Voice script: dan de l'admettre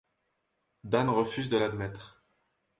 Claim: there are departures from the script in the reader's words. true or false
true